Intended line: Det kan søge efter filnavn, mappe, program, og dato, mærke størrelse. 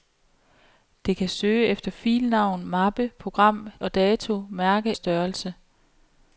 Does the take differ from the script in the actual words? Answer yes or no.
no